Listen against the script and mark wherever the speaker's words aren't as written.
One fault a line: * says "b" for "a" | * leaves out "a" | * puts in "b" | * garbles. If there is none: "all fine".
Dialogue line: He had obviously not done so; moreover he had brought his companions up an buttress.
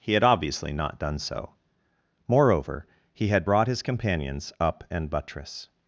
all fine